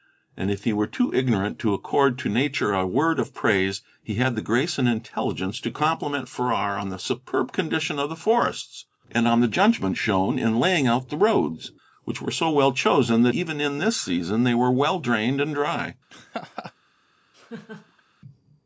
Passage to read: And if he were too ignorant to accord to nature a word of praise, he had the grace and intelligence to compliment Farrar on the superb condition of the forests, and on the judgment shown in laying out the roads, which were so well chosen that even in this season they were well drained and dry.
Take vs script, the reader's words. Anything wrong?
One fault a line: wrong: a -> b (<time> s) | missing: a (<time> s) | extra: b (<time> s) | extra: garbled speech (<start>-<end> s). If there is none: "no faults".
no faults